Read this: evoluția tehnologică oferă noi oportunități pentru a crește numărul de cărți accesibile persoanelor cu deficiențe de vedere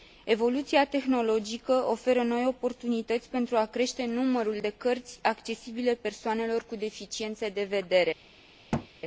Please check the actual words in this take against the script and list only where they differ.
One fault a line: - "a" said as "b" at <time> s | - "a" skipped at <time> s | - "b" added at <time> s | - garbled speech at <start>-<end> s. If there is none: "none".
none